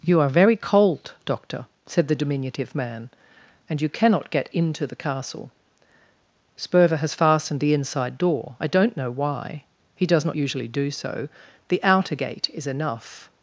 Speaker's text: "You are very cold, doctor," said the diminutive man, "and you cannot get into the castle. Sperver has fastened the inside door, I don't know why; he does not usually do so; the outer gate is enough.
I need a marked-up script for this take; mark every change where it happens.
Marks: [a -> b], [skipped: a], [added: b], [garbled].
"You are very cold, doctor," said the diminutive man, "and you cannot get into the castle. Sperver has fastened the inside door, I don't know why; he does not usually do so; the outer gate is enough.